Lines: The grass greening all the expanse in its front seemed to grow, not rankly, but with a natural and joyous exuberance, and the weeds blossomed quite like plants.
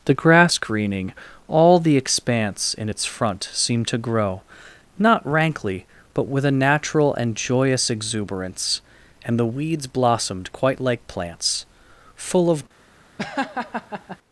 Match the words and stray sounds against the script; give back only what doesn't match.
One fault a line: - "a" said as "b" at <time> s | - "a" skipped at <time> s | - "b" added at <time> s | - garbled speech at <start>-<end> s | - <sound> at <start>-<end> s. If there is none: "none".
- "Full of" added at 12.2 s
- laugh at 13.2-14.2 s